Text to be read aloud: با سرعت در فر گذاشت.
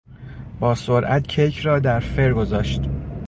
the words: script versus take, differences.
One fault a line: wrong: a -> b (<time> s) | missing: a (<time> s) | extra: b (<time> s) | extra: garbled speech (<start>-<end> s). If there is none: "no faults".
extra: کیک را (1.3 s)